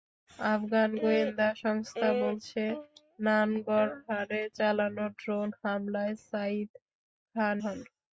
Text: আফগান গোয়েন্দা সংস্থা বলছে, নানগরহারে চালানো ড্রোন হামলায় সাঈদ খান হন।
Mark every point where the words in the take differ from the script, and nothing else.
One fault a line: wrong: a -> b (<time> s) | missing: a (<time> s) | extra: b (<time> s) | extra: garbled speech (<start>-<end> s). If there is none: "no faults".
no faults